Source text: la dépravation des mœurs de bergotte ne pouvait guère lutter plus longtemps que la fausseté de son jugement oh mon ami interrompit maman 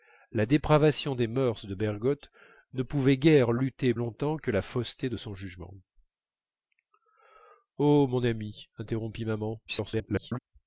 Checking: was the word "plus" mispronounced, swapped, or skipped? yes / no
yes